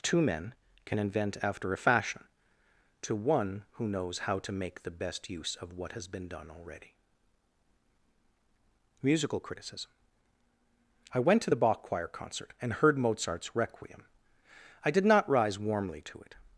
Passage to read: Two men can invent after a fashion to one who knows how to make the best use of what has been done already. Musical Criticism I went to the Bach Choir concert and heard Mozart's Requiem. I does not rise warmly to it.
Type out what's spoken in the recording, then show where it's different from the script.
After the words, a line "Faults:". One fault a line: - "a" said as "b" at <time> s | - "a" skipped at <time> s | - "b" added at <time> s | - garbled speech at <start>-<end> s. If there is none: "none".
Two men can invent after a fashion to one who knows how to make the best use of what has been done already. Musical Criticism I went to the Bach Choir concert and heard Mozart's Requiem. I did not rise warmly to it.
Faults:
- "does" said as "did" at 14.9 s